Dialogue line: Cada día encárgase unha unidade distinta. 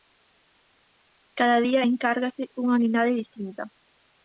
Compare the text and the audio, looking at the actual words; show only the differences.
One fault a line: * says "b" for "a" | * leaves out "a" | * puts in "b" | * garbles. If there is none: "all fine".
all fine